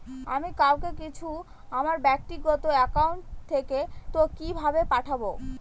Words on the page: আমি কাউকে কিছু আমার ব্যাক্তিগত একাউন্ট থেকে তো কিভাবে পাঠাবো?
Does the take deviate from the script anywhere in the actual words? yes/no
no